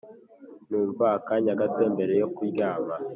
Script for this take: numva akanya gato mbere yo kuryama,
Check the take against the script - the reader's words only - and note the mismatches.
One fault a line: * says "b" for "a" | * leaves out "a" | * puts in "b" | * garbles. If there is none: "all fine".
all fine